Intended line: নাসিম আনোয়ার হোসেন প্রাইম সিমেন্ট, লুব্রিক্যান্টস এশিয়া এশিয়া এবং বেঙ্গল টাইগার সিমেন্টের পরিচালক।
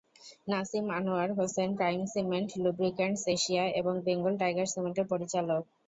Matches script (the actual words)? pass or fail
fail